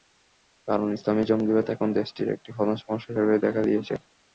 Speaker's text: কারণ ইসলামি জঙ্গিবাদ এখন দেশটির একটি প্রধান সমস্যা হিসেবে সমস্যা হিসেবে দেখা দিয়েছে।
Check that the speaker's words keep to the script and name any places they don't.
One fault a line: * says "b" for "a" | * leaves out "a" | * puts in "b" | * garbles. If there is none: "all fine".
* leaves out "সমস্যা হিসেবে"